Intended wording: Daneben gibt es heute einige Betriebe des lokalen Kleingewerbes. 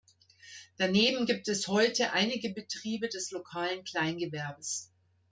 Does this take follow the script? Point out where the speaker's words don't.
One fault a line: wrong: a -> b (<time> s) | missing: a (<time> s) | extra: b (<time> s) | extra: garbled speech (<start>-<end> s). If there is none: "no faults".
no faults